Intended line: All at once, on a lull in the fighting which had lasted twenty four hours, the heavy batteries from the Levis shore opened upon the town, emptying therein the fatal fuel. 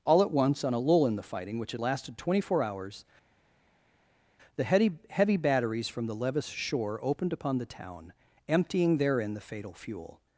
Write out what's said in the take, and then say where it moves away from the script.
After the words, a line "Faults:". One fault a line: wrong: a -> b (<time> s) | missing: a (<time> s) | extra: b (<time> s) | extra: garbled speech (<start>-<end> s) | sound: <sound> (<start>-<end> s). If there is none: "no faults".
All at once, on a lull in the fighting which had lasted twenty four hours, the heavy heavy batteries from the Levis shore opened upon the town, emptying therein the fatal fuel.
Faults:
extra: heavy (5.1 s)